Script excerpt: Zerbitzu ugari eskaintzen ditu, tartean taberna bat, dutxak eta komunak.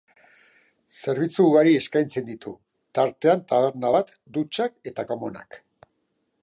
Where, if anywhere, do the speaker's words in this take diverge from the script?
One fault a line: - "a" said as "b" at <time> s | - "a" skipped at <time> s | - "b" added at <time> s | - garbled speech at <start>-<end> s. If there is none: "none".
none